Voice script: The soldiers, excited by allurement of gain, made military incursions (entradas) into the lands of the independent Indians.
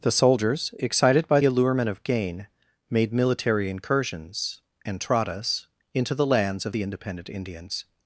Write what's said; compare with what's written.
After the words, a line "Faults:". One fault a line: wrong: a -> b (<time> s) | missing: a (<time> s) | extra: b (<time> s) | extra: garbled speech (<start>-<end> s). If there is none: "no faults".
The soldiers, excited by allurement of gain, made military incursions (entradas) into the lands of the independent Indians.
Faults:
no faults